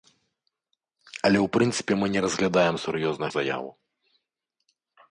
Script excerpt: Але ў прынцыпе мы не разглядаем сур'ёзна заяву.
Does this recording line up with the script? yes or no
yes